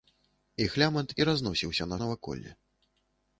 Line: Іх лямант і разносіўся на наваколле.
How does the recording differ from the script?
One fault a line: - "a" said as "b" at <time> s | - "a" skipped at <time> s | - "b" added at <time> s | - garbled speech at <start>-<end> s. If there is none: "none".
none